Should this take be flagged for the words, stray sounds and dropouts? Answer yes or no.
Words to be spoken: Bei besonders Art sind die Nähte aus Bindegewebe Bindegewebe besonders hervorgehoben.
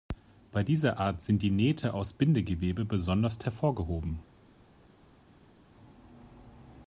yes